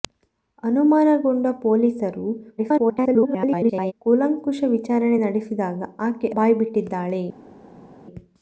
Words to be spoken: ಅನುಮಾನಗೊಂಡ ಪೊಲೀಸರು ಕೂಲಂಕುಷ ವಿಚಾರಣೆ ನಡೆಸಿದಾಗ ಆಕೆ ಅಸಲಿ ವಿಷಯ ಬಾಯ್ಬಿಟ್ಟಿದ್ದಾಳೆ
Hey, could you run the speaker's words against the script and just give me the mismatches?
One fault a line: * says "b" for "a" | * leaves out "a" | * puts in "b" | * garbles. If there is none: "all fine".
* garbles
* leaves out "ಅಸಲಿ ವಿಷಯ"